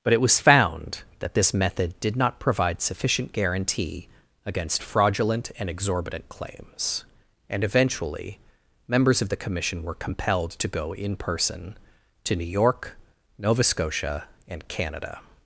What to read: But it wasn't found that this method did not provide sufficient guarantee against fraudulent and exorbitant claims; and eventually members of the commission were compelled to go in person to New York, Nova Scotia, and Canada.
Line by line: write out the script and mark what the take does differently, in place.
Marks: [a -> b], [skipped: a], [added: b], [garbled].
But it [wasn't -> was] found that this method did not provide sufficient guarantee against fraudulent and exorbitant claims; and eventually members of the commission were compelled to go in person to New York, Nova Scotia, and Canada.